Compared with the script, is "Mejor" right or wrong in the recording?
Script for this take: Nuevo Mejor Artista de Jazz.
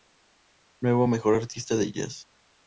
right